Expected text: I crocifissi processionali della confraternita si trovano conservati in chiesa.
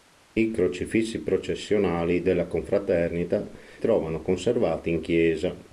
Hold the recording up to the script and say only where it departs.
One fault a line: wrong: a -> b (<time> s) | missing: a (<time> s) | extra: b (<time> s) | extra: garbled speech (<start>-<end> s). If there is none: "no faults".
missing: si (3.5 s)